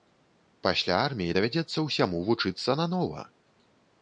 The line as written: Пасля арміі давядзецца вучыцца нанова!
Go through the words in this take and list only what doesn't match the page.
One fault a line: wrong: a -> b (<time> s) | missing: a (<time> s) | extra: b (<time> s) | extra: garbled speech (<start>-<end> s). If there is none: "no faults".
extra: ўсяму (1.9 s)